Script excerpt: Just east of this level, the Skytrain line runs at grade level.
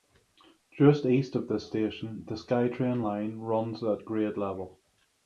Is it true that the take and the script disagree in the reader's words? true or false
true